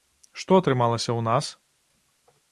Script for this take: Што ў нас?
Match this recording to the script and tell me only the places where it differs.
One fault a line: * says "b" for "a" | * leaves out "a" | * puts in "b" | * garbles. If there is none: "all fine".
* puts in "атрымалася"